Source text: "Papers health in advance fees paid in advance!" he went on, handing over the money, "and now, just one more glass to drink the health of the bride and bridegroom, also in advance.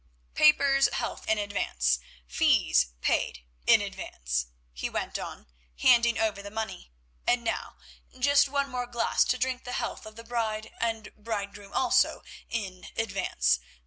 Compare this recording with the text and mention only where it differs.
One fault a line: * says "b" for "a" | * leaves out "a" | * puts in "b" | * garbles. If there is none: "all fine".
all fine